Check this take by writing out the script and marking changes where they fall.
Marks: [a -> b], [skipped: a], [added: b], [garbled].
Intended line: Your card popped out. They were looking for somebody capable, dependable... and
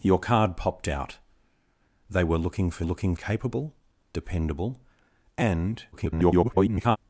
Your card popped out. They were looking for [somebody -> looking] capable, dependable... and [garbled]